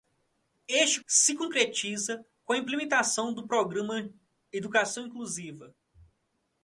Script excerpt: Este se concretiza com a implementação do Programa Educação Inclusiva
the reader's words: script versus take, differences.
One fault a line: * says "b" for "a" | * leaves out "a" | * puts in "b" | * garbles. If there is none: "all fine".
all fine